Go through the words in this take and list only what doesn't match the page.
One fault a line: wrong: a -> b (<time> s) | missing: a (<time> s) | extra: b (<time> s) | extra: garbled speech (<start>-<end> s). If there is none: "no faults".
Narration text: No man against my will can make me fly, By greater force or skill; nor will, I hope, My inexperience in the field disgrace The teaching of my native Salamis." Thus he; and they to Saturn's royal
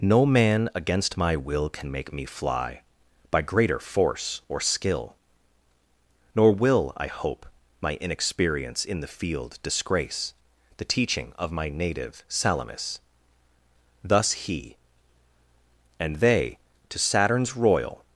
no faults